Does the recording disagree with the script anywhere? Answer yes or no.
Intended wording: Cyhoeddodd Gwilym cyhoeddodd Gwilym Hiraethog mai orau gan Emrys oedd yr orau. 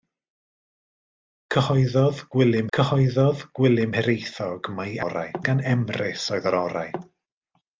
no